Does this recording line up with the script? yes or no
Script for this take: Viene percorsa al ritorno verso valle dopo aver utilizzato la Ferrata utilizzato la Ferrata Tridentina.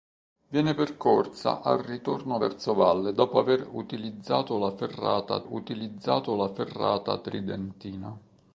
yes